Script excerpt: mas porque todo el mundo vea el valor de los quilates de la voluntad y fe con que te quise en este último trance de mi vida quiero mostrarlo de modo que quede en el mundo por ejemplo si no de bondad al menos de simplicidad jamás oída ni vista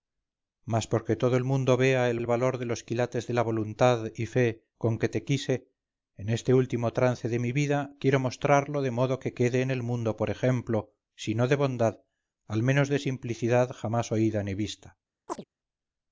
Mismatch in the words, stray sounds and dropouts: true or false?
true